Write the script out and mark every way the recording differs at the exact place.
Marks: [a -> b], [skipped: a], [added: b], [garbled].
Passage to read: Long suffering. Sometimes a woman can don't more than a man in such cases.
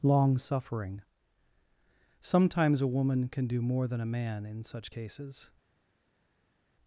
Long suffering. Sometimes a woman can [don't -> do] more than a man in such cases.